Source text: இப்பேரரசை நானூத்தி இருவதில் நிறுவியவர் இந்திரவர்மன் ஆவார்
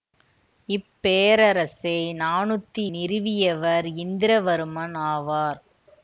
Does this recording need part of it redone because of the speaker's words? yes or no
yes